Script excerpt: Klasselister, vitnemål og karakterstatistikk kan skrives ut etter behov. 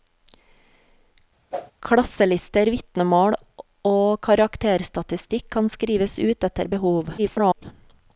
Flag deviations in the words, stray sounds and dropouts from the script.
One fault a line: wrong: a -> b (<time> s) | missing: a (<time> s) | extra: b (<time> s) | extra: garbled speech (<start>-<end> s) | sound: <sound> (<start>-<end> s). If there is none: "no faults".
sound: whoosh (1.5-1.7 s)
extra: garbled speech (7.2-7.6 s)